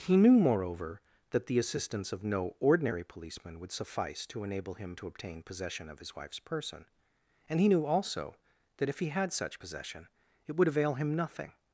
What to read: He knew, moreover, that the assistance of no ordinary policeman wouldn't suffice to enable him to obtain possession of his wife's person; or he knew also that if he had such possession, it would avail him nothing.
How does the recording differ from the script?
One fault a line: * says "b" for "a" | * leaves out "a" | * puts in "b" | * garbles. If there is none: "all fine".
* says "would" for "wouldn't"
* says "and" for "or"